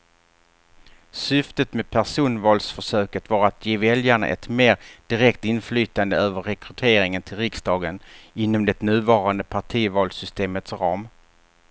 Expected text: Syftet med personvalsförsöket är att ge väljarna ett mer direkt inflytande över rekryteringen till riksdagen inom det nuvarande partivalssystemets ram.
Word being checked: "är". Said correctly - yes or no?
no